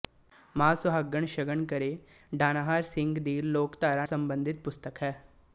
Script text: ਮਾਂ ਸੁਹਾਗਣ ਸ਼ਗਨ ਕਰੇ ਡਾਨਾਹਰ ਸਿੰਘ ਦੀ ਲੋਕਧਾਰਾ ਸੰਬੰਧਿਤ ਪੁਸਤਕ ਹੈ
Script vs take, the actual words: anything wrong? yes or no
no